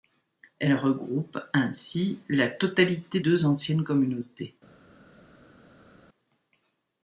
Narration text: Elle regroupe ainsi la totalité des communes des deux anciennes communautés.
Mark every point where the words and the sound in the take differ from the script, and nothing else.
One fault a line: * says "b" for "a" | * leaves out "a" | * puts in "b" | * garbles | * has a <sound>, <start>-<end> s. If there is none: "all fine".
* leaves out "des communes des"